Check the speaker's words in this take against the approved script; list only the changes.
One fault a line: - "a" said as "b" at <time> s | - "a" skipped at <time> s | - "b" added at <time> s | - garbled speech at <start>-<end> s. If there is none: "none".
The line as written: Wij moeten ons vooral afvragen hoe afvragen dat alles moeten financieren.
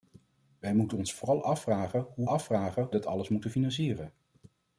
none